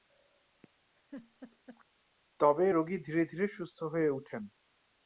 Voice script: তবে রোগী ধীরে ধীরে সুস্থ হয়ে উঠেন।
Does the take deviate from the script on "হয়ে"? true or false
false